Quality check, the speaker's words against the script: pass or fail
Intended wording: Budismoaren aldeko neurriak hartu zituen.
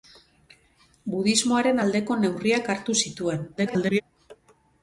fail